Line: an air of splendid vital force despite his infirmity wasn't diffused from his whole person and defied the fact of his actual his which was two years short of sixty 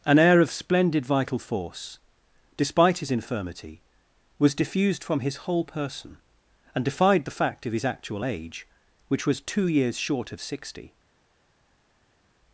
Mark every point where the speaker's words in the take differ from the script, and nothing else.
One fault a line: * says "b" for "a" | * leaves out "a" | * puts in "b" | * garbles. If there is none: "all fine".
* says "was" for "wasn't"
* says "age" for "his"